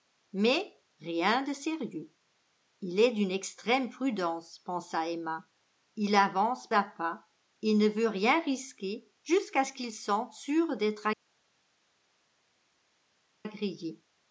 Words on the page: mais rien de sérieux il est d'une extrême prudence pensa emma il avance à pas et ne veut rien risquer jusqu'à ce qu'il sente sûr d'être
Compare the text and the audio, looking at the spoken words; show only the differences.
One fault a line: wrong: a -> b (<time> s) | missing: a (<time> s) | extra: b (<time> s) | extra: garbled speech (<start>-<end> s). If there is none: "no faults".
no faults